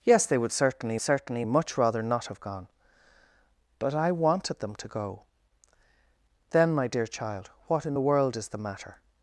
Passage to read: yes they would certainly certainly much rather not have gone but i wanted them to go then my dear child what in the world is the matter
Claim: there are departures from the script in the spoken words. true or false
false